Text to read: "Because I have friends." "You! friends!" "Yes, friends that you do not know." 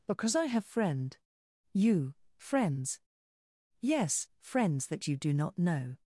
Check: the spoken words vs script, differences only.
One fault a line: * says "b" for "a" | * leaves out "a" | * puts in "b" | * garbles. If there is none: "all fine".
* says "friend" for "friends"